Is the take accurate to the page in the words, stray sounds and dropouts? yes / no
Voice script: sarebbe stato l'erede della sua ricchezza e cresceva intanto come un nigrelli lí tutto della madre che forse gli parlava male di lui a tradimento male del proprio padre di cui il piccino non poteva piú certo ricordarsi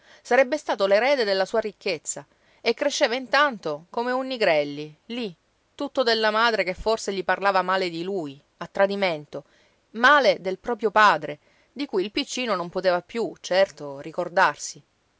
yes